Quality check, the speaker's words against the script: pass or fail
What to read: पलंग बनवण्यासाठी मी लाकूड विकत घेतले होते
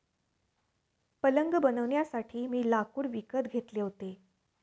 pass